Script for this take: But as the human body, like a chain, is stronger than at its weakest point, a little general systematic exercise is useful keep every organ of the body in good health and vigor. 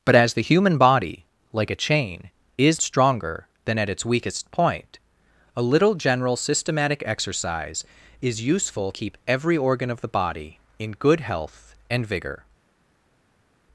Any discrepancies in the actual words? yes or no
no